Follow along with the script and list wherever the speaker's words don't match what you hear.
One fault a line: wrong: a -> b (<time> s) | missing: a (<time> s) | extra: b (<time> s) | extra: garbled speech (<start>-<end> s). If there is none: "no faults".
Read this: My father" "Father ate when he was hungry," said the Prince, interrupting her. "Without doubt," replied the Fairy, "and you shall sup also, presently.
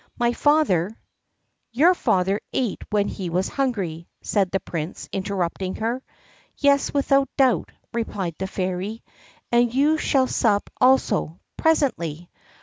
extra: Your (1.7 s)
extra: Yes (6.6 s)